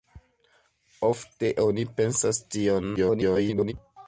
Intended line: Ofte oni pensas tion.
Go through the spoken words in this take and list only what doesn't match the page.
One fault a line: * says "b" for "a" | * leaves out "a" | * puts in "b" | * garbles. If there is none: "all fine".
* garbles